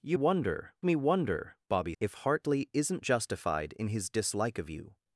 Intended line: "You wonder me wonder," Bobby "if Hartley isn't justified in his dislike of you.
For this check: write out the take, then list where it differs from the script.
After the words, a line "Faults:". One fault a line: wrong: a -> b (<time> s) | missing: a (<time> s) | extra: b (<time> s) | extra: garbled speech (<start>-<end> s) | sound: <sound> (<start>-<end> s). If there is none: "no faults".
"You wonder me wonder," Bobby "if Hartley isn't justified in his dislike of you.
Faults:
no faults